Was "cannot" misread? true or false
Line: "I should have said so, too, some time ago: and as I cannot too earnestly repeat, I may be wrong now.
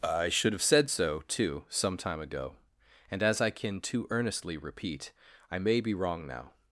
true